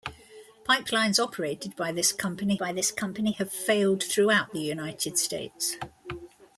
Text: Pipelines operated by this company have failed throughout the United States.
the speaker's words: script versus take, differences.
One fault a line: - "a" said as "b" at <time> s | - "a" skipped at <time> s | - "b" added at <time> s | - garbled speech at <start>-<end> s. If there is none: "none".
- "by this company" added at 2.6 s